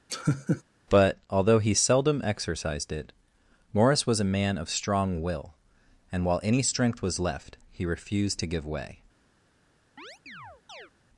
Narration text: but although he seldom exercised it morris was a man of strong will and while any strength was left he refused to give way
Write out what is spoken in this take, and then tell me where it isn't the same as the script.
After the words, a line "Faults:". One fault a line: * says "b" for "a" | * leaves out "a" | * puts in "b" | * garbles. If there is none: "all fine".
but although he seldom exercised it morris was a man of strong will and while any strength was left he refused to give way
Faults:
all fine